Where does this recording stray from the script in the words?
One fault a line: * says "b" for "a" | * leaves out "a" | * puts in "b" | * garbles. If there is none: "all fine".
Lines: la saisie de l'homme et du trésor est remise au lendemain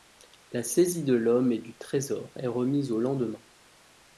all fine